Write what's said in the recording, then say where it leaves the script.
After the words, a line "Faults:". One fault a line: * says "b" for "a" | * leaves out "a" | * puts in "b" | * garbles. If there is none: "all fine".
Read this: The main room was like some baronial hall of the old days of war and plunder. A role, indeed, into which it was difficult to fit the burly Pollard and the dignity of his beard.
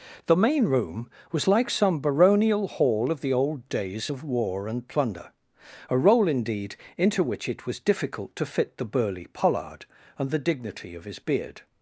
The main room was like some baronial hall of the old days of war and plunder. A role, indeed, into which it was difficult to fit the burly Pollard and the dignity of his beard.
Faults:
all fine